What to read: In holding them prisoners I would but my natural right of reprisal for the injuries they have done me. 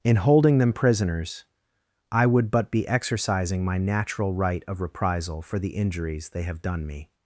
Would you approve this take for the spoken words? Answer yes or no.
no